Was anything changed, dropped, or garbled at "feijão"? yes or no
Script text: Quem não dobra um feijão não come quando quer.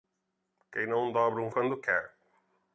yes